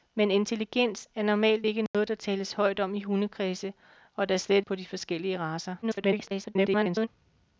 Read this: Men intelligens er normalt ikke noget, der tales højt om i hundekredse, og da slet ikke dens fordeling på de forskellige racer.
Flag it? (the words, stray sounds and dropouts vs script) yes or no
yes